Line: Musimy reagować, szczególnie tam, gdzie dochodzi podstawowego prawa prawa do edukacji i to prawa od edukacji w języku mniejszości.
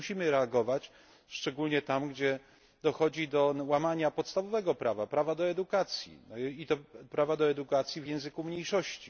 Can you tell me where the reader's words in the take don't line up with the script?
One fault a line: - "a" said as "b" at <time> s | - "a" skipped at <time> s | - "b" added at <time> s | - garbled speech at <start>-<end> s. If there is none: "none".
- "do łamania" added at 3.3 s
- "od" said as "do" at 7.4 s